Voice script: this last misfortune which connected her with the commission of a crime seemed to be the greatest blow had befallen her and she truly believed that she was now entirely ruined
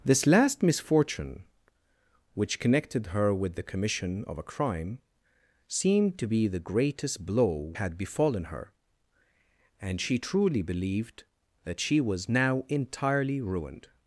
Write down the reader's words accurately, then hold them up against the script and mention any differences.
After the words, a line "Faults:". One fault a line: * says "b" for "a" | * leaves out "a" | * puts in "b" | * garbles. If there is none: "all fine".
this last misfortune which connected her with the commission of a crime seemed to be the greatest blow had befallen her and she truly believed that she was now entirely ruined
Faults:
all fine